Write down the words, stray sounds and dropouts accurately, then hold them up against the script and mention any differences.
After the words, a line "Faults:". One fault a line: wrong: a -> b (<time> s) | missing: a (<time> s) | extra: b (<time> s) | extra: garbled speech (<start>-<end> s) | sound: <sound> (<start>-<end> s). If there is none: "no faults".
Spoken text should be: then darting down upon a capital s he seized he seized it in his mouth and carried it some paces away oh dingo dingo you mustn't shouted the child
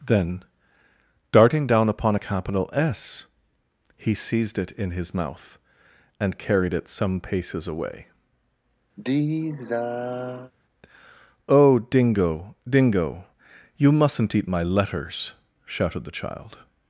then darting down upon a capital s he seized it in his mouth and carried it some paces away oh dingo dingo you mustn't eat my letters shouted the child
Faults:
missing: he seized (4.6 s)
sound: sigh (9.0-10.5 s)
extra: eat my letters (14.3 s)